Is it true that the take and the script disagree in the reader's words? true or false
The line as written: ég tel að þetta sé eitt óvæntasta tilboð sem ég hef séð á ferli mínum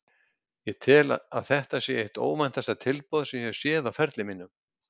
false